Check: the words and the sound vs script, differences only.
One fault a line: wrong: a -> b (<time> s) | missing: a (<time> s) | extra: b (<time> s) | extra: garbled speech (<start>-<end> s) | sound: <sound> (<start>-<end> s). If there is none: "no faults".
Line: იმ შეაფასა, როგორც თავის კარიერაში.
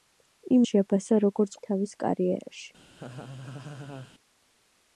sound: laugh (2.9-4.1 s)